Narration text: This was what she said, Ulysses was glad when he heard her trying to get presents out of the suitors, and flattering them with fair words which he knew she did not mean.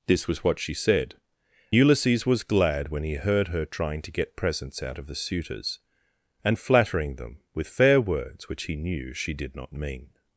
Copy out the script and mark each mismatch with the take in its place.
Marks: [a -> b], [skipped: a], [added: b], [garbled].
This was what she said, Ulysses was glad when he heard her trying to get presents out of the suitors, and flattering them with fair words which he knew she did not mean.